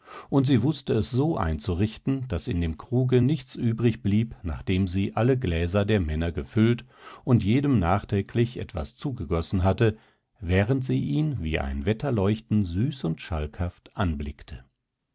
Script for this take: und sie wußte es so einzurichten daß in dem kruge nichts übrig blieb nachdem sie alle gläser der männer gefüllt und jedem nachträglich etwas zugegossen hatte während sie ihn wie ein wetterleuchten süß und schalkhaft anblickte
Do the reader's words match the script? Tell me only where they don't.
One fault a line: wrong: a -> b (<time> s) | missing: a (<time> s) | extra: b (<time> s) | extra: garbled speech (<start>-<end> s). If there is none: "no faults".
no faults